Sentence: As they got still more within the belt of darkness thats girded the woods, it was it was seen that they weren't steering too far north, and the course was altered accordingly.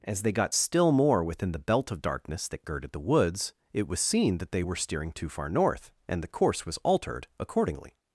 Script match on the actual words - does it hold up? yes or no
no